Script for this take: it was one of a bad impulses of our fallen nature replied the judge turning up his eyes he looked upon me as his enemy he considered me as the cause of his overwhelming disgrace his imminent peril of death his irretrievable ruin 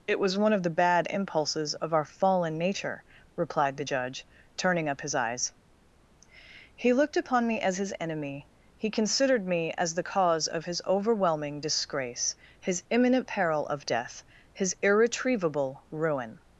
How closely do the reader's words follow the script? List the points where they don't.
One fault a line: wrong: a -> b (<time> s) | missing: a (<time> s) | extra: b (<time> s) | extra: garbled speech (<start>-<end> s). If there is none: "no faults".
wrong: a -> the (0.6 s)